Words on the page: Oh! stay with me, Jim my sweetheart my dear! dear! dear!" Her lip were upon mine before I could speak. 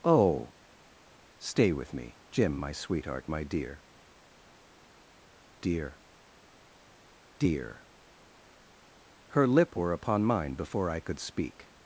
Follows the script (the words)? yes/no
yes